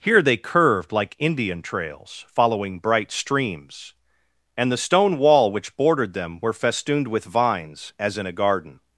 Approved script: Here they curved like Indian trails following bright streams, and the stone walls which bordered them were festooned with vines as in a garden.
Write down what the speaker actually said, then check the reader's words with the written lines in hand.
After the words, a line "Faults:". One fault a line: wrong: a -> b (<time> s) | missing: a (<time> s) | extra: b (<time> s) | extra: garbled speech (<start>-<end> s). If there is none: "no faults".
Here they curved like Indian trails following bright streams, and the stone wall which bordered them were festooned with vines as in a garden.
Faults:
wrong: walls -> wall (5.2 s)